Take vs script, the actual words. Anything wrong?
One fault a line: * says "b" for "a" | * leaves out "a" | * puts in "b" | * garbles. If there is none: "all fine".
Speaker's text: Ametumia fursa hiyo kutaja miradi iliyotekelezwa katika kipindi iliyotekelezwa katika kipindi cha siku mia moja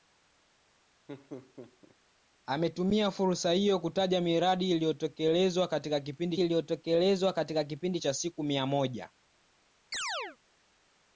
all fine